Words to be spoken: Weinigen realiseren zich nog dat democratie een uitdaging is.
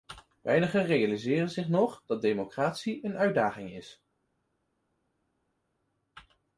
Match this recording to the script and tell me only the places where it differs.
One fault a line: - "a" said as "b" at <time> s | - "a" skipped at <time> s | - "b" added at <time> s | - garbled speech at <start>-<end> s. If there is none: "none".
none